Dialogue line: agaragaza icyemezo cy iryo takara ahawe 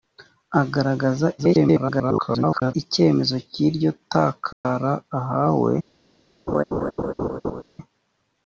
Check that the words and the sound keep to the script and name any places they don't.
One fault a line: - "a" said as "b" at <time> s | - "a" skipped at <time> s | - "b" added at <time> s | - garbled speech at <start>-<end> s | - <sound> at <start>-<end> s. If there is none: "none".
- garbled speech at 1.4-2.7 s
- dropout at 4.5-4.6 s
- laugh at 6.5-7.6 s